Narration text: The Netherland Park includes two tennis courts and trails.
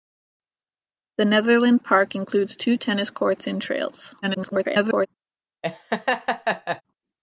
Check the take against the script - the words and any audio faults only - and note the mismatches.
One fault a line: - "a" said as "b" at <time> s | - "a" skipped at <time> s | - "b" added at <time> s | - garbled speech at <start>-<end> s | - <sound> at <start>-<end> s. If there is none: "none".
- garbled speech at 4.2-5.1 s
- laugh at 5.6-6.8 s